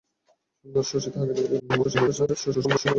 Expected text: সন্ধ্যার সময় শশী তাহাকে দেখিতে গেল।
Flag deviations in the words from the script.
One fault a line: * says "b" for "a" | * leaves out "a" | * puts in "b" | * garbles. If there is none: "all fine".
* leaves out "সময়"
* garbles